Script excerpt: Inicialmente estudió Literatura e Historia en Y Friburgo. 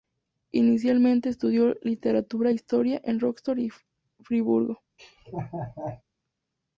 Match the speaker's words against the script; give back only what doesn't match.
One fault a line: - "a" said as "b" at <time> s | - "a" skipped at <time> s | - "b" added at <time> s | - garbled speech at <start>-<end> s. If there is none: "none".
- "Rostock" added at 3.2 s